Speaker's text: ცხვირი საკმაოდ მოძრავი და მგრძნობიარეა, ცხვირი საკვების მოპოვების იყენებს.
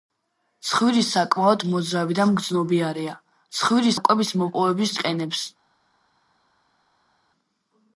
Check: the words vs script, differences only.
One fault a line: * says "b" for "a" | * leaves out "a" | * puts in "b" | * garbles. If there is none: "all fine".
all fine